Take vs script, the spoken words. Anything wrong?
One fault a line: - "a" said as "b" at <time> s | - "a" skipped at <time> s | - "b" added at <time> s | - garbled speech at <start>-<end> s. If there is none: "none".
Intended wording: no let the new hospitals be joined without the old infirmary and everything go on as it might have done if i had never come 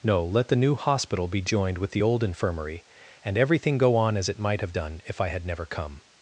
- "hospitals" said as "hospital" at 0.7 s
- "without" said as "with" at 1.8 s